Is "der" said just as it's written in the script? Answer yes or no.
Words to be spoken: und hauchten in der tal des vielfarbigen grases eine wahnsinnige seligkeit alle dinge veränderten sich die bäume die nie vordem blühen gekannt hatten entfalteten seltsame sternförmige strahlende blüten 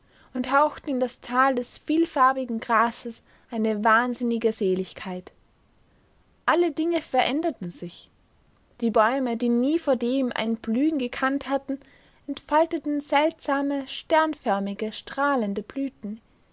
no